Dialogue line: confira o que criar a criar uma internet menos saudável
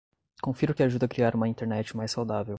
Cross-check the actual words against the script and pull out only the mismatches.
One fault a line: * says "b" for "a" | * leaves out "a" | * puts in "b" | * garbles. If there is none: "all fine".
* says "ajuda" for "criar"
* says "mais" for "menos"